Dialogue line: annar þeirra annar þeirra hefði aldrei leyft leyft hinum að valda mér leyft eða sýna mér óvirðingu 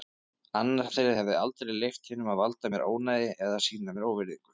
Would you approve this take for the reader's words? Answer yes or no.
no